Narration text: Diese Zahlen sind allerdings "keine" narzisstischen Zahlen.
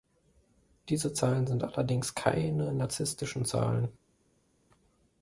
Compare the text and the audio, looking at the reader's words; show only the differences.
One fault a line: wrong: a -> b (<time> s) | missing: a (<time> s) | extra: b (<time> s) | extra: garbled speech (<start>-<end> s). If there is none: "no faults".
no faults